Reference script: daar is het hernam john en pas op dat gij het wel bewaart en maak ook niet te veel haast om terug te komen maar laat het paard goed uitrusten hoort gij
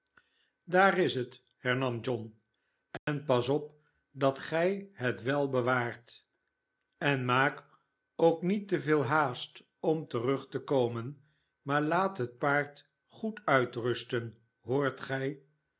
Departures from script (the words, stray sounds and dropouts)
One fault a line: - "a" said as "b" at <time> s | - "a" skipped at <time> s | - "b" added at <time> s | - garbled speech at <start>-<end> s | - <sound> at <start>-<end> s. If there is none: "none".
- dropout at 3.0-3.1 s